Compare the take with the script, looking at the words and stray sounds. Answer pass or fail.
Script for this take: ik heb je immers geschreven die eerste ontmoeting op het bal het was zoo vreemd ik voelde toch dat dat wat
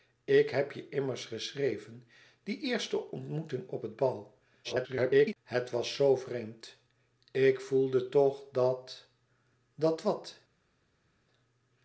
fail